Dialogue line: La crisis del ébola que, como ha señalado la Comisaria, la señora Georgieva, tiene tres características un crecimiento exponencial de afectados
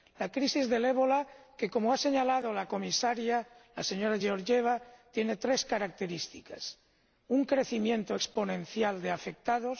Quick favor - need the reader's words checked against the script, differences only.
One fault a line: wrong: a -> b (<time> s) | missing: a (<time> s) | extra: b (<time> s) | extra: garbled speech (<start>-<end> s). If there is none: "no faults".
no faults